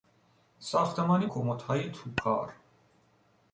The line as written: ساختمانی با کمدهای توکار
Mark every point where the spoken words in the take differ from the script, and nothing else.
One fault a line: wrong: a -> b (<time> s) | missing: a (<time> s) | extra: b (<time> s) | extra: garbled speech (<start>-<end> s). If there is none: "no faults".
missing: با (1.2 s)